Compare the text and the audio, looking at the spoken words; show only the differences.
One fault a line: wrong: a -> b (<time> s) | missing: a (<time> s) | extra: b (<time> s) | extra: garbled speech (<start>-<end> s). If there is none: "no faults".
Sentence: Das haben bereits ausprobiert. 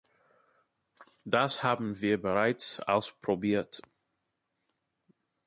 extra: wir (2.0 s)